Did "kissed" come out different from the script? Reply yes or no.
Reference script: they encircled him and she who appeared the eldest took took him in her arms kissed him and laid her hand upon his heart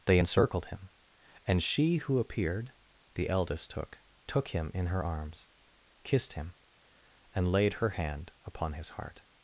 no